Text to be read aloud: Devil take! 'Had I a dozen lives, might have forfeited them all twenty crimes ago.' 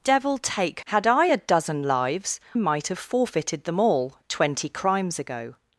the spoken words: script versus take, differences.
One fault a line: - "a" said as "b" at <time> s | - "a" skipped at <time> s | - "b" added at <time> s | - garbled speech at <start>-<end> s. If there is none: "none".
none